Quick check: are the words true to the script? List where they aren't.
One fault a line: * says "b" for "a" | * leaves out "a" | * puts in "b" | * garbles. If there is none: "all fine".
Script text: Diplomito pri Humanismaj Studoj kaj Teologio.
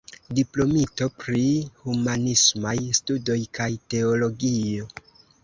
all fine